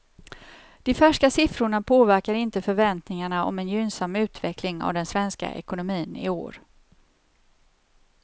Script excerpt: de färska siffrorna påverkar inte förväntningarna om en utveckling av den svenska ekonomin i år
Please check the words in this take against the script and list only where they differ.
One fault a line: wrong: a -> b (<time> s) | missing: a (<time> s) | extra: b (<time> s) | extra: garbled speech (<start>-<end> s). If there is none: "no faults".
extra: gynnsam (3.7 s)